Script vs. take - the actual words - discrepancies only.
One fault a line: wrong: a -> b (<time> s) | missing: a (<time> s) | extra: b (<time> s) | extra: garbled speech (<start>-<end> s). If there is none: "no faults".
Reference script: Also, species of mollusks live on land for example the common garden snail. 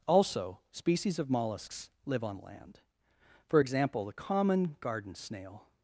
no faults